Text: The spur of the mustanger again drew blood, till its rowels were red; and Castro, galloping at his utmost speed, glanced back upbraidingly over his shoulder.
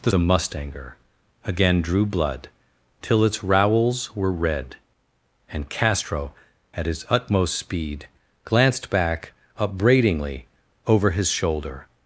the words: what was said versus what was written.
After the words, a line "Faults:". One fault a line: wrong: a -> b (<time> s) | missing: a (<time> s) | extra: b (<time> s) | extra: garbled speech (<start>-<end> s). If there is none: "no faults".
The the mustanger again drew blood, till its rowels were red; and Castro, at his utmost speed, glanced back upbraidingly over his shoulder.
Faults:
missing: spur of (0.1 s)
missing: galloping (6.3 s)